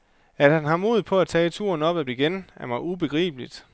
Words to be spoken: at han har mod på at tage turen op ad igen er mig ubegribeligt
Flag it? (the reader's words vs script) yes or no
no